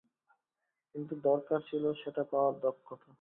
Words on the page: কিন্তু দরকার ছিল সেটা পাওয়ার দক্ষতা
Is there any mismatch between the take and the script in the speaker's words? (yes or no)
no